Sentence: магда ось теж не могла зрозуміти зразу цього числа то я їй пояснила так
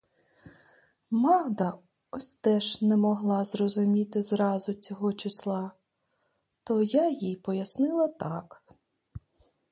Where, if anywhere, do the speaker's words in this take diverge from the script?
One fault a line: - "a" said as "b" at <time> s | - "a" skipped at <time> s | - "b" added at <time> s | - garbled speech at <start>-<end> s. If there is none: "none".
none